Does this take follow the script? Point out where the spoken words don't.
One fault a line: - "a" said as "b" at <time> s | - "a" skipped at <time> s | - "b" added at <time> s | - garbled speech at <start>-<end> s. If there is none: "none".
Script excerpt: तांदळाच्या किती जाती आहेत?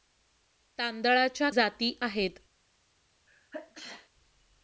- "किती" skipped at 1.5 s